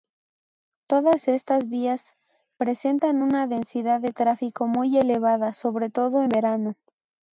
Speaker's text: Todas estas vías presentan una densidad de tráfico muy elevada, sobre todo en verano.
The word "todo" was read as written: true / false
true